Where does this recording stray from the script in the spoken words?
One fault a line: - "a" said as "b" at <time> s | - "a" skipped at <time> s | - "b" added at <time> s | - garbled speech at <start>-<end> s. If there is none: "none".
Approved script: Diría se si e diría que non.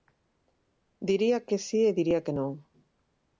- "se" said as "que" at 1.5 s